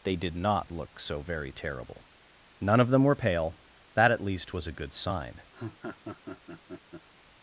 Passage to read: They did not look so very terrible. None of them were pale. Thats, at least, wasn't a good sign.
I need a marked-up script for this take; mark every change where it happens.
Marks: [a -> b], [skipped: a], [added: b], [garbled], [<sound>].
They did not look so very terrible. None of them were pale. [Thats, -> That] at least, [wasn't -> was] a good sign. [laugh]